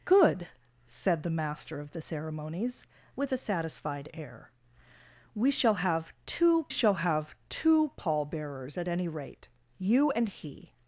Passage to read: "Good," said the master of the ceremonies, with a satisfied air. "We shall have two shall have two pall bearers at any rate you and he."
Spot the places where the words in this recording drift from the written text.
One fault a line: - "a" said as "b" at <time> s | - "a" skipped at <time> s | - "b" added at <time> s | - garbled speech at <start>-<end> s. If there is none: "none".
none